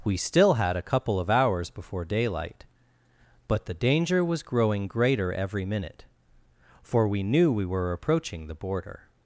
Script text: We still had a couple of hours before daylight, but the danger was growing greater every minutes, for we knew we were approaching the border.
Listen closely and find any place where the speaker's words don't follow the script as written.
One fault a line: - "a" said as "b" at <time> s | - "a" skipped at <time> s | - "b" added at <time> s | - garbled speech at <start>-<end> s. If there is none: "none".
- "minutes" said as "minute" at 5.6 s